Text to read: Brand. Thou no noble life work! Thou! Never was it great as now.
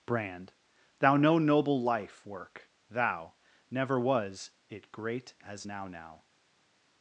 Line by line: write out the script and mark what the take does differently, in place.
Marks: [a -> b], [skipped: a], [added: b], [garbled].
Brand. Thou no noble life work! Thou! Never was it great as now. [added: now]